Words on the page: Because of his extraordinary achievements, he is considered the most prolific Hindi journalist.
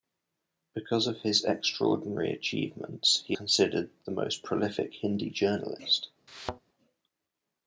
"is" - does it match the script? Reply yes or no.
no